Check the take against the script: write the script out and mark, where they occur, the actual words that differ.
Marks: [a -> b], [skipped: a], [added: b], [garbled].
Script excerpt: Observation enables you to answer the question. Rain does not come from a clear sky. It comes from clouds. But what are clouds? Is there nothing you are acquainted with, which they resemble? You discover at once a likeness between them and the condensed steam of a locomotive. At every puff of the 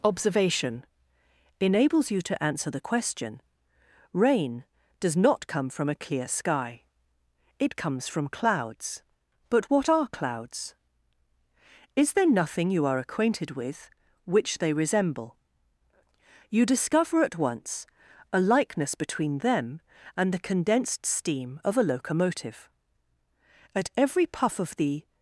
Observation enables you to answer the question. Rain does not come from a clear sky. It comes from clouds. But what are clouds? Is there nothing you are acquainted with, which they resemble? You discover at once a likeness between them and the condensed steam of a locomotive. At every puff of the